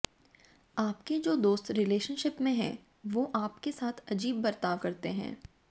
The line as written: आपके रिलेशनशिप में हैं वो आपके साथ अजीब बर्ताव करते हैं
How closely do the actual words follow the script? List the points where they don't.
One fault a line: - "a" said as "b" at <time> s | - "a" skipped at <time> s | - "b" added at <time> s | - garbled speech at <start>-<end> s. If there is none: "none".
- "जो दोस्त" added at 1.2 s